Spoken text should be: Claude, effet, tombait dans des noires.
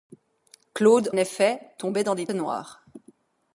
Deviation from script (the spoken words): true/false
false